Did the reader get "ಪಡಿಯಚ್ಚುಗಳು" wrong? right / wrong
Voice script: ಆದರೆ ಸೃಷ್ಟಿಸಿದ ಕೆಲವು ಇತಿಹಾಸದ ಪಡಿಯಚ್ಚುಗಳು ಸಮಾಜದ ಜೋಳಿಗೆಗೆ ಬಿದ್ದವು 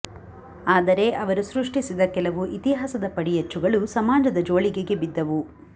right